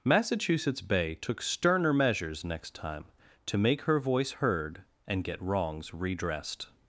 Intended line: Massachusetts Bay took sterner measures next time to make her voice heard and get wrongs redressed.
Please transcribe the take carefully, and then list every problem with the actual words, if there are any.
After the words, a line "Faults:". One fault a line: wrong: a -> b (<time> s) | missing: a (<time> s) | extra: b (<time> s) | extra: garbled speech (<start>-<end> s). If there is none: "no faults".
Massachusetts Bay took sterner measures next time to make her voice heard and get wrongs redressed.
Faults:
no faults